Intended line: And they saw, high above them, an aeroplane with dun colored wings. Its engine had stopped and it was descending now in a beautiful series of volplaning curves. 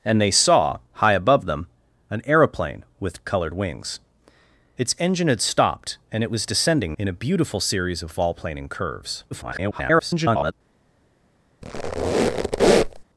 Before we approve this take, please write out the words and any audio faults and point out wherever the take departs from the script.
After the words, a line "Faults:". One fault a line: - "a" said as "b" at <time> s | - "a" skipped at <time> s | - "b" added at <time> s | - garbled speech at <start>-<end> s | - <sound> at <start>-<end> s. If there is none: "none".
And they saw, high above them, an aeroplane with colored wings. Its engine had stopped and it was descending in a beautiful series of volplaning curves. [garbled]
Faults:
- "dun" skipped at 3.3 s
- "now" skipped at 6.9 s
- garbled speech at 9.3-10.5 s
- squeak at 11.6-13.0 s